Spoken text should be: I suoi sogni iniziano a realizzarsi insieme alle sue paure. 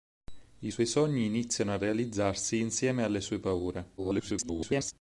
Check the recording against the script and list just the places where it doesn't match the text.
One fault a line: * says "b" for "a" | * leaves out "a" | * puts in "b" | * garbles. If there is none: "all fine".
* garbles